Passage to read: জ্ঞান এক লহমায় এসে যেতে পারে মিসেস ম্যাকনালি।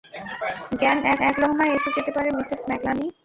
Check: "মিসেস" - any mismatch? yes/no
no